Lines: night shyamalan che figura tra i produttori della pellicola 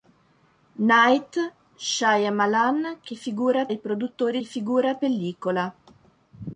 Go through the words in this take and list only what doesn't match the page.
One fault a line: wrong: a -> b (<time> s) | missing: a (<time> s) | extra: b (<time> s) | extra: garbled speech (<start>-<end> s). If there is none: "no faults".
missing: tra (3.7 s)
wrong: della -> figura (4.4 s)